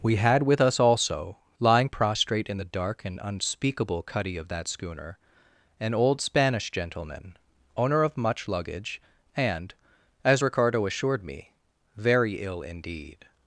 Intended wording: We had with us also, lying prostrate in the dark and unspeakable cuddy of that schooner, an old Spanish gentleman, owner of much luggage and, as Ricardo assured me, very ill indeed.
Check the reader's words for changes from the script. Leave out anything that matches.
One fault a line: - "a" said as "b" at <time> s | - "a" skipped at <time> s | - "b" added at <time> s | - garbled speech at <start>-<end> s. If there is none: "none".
none